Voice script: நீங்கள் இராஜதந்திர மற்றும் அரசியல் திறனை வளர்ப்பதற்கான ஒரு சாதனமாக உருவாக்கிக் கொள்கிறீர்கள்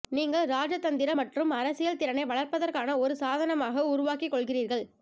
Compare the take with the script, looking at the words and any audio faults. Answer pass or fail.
pass